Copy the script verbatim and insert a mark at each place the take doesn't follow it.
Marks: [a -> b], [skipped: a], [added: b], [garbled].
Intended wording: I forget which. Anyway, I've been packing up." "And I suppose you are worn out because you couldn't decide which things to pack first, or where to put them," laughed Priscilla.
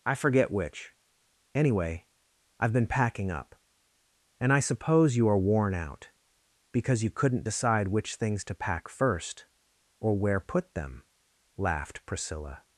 I forget which. Anyway, I've been packing up." "And I suppose you are worn out because you couldn't decide which things to pack first, or where [skipped: to] put them," laughed Priscilla.